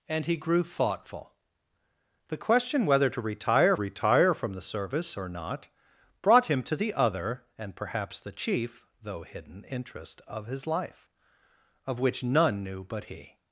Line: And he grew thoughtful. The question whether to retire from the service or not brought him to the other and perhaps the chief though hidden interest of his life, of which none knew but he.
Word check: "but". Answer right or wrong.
right